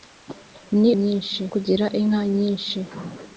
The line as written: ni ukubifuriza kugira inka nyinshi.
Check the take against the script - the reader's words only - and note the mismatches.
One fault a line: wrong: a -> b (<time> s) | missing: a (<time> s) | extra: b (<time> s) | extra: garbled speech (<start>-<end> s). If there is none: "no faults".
wrong: ukubifuriza -> nyinshi (1.0 s)